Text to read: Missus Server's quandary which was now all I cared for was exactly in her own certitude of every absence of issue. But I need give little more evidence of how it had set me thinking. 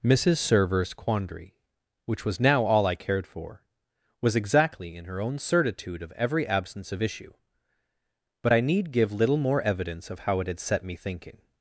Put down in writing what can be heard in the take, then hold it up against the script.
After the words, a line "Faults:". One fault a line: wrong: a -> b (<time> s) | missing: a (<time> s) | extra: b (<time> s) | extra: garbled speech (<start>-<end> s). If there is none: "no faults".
Missus Server's quandary which was now all I cared for was exactly in her own certitude of every absence of issue. But I need give little more evidence of how it had set me thinking.
Faults:
no faults